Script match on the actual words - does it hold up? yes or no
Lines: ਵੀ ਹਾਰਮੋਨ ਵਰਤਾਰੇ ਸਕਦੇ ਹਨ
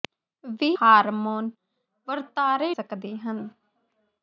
yes